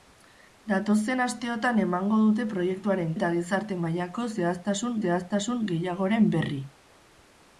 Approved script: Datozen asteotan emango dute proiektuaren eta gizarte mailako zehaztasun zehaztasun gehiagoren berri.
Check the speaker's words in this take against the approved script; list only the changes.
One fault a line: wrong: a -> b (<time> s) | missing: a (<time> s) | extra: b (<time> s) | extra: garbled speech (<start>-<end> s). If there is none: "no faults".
no faults